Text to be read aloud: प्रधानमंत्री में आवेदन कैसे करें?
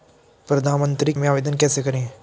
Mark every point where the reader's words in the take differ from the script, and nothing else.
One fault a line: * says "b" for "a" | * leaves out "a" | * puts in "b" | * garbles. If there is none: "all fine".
all fine